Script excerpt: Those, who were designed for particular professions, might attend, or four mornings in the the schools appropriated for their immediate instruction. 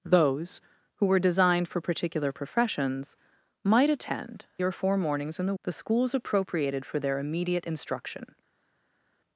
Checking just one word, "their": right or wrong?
right